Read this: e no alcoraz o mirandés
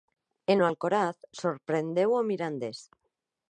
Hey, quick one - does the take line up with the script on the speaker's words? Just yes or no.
no